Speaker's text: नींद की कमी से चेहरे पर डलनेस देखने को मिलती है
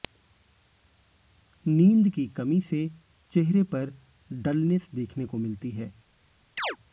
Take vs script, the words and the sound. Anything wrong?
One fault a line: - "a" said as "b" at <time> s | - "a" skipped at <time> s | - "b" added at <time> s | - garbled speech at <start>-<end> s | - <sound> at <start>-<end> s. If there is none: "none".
- chirp at 6.6-6.8 s